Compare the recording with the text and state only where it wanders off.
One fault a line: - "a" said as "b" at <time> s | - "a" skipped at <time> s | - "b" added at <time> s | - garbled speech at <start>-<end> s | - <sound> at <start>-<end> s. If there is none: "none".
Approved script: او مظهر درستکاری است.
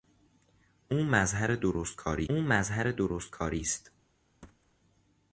- "او مظهر درستکاری" added at 2.3 s
- thud at 4.4-4.7 s